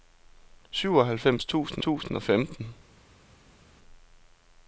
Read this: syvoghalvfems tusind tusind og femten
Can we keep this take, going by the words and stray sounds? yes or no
yes